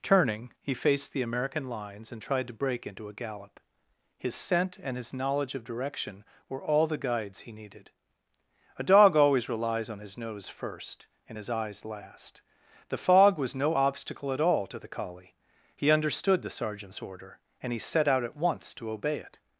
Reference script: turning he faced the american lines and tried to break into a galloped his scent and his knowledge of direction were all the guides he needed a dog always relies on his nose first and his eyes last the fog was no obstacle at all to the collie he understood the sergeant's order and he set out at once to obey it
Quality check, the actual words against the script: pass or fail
fail